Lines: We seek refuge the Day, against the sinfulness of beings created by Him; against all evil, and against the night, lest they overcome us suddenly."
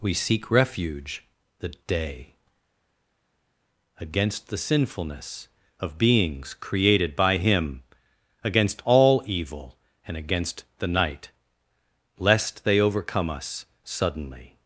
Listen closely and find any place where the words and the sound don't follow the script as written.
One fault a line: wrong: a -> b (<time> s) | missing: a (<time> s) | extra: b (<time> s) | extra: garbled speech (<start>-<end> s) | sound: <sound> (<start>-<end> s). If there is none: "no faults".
no faults